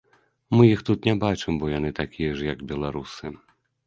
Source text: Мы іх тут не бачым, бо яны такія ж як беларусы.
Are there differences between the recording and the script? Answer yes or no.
no